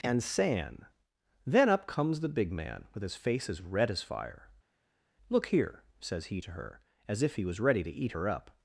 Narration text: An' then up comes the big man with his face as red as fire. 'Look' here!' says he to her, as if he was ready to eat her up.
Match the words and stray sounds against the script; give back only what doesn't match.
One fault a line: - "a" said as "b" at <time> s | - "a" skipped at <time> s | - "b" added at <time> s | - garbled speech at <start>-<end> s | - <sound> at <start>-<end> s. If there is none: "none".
- "An" said as "And san" at 0.0 s